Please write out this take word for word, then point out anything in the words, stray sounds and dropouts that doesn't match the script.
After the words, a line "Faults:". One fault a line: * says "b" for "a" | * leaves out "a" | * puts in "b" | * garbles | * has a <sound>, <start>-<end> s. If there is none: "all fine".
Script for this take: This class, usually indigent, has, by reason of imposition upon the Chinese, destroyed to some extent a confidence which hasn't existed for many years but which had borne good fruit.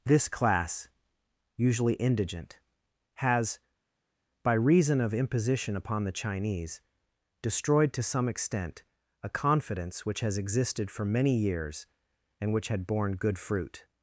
This class, usually indigent, has, by reason of imposition upon the Chinese, destroyed to some extent a confidence which has existed for many years and which had borne good fruit.
Faults:
* says "has" for "hasn't"
* says "and" for "but"